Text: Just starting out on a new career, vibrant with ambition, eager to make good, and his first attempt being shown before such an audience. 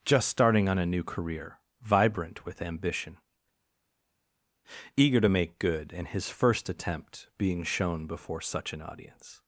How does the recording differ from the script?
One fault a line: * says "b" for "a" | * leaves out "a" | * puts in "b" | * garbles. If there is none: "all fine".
* leaves out "out"